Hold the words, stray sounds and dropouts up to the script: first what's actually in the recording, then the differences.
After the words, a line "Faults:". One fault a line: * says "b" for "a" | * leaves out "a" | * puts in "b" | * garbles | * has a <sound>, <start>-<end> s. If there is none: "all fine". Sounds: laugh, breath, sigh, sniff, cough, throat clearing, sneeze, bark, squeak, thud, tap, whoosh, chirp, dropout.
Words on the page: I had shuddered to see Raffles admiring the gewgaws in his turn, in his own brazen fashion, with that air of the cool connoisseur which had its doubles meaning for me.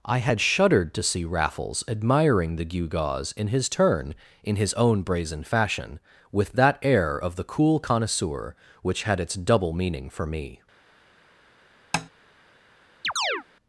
I had shuddered to see Raffles admiring the gewgaws in his turn, in his own brazen fashion, with that air of the cool connoisseur which had its double meaning for me.
Faults:
* says "double" for "doubles"
* has a tap, 11.9-12.1 s
* has a chirp, 13.0-13.4 s